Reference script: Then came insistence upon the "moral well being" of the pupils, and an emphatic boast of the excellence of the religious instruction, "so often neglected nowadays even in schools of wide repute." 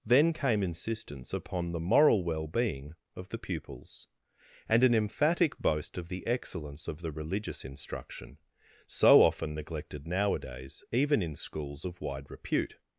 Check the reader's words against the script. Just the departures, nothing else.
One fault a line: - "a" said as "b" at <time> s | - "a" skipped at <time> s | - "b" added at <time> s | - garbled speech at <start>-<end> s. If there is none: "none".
none